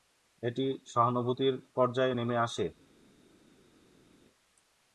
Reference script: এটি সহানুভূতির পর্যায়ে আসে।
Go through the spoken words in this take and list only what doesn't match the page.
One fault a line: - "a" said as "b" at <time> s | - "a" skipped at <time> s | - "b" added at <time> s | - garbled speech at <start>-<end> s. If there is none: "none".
- "নেমে" added at 2.1 s